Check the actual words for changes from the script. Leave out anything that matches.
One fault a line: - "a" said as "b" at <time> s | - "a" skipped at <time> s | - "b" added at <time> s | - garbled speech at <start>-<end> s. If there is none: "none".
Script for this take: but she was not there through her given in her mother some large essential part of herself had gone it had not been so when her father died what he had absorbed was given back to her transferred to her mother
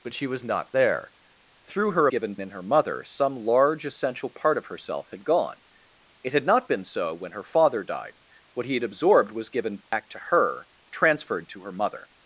none